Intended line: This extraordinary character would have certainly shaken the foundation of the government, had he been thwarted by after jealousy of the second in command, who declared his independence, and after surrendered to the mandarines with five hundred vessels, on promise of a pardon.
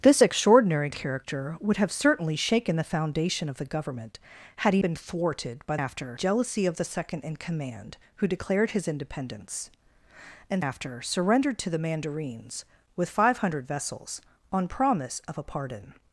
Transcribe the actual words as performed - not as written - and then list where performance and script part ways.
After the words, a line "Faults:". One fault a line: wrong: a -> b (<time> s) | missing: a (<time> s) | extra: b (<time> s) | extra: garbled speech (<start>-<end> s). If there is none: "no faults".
This extraordinary character would have certainly shaken the foundation of the government, had he been thwarted by after jealousy of the second in command, who declared his independence, and after surrendered to the mandarines with five hundred vessels, on promise of a pardon.
Faults:
no faults